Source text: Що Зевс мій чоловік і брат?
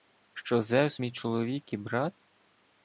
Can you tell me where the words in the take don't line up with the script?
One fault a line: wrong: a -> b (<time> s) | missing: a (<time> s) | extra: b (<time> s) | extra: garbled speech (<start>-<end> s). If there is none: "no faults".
no faults